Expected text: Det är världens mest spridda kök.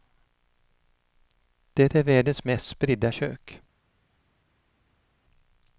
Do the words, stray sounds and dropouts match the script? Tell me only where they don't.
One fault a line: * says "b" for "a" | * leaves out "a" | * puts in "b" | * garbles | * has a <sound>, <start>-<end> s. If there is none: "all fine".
all fine